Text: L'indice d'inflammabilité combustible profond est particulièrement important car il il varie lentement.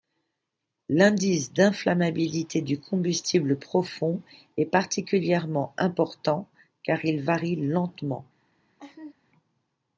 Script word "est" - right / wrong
right